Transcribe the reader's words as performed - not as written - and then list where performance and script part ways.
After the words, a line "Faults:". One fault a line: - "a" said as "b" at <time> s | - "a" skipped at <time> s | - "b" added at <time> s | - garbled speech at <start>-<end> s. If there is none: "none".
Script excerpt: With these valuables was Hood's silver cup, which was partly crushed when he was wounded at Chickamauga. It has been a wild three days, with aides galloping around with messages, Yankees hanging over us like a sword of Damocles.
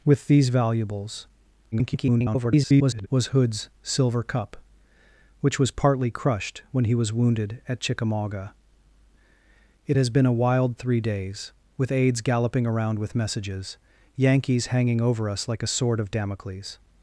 With these valuables [garbled] was Hood's silver cup, which was partly crushed when he was wounded at Chickamauga. It has been a wild three days, with aides galloping around with messages, Yankees hanging over us like a sword of Damocles.
Faults:
- garbled speech at 1.7-3.1 s